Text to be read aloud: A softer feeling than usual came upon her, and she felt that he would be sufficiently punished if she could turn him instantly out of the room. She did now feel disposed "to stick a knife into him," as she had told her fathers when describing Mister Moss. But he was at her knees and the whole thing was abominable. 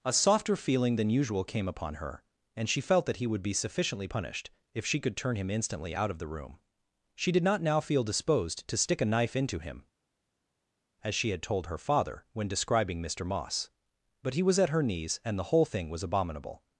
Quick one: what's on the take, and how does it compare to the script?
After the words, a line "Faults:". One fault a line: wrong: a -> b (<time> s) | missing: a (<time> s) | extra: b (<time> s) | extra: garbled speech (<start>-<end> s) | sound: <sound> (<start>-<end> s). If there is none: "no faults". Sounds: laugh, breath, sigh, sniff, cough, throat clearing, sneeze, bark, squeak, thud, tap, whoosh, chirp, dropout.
A softer feeling than usual came upon her, and she felt that he would be sufficiently punished if she could turn him instantly out of the room. She did not now feel disposed "to stick a knife into him," as she had told her father when describing Mister Moss. But he was at her knees and the whole thing was abominable.
Faults:
extra: not (7.4 s)
wrong: fathers -> father (11.8 s)